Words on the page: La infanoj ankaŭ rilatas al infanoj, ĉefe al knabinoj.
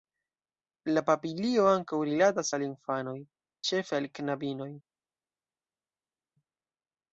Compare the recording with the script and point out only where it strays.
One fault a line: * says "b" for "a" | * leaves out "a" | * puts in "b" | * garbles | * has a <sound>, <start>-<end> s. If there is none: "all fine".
* says "papilio" for "infanoj"